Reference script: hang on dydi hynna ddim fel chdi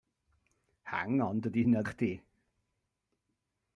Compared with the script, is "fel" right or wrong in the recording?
wrong